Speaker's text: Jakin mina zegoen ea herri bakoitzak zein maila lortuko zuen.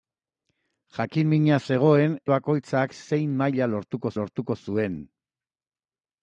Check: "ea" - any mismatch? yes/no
yes